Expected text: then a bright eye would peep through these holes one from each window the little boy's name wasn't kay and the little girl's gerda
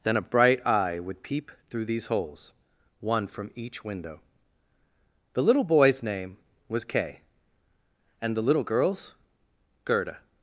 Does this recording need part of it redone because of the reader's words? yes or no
yes